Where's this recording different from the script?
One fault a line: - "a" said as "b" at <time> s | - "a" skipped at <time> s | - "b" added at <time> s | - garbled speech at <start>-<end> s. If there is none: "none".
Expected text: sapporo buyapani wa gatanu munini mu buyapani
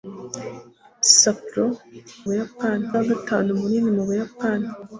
none